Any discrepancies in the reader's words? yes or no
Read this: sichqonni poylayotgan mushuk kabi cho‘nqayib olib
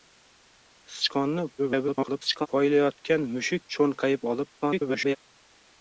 yes